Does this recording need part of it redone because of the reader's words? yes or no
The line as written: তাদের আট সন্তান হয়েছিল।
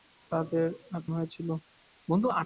yes